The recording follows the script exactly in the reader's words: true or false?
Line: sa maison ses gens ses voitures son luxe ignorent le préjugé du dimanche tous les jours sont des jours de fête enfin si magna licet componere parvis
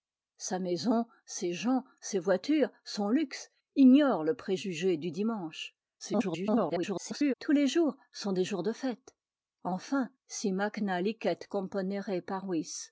false